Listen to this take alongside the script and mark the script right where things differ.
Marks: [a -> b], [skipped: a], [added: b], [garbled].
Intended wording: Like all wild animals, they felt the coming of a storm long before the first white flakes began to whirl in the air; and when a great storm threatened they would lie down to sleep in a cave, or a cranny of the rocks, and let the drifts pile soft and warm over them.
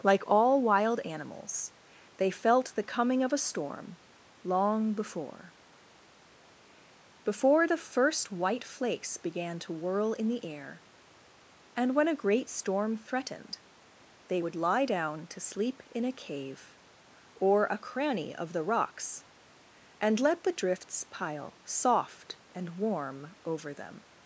Like all wild animals, they felt the coming of a storm long before [added: before] the first white flakes began to whirl in the air; and when a great storm threatened they would lie down to sleep in a cave, or a cranny of the rocks, and let the drifts pile soft and warm over them.